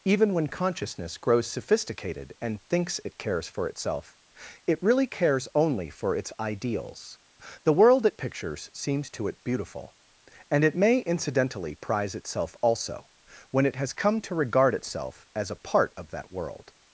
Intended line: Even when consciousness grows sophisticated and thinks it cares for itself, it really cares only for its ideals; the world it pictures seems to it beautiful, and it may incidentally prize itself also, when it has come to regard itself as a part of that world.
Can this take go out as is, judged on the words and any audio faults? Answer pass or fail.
pass